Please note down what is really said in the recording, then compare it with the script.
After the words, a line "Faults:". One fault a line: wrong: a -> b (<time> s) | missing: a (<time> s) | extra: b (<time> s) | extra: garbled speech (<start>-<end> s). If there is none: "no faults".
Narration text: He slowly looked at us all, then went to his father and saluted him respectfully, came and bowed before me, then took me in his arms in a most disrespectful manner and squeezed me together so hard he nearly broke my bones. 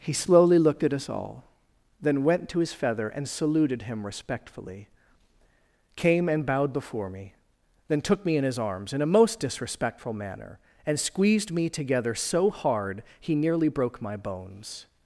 He slowly looked at us all, then went to his feather and saluted him respectfully, came and bowed before me, then took me in his arms in a most disrespectful manner and squeezed me together so hard he nearly broke my bones.
Faults:
wrong: father -> feather (2.7 s)